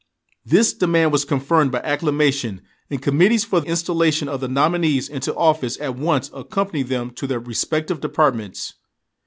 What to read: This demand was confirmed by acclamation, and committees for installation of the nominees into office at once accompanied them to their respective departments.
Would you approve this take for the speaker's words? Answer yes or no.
yes